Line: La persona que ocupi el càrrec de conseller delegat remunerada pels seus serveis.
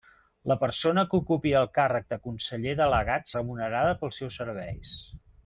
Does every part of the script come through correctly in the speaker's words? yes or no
yes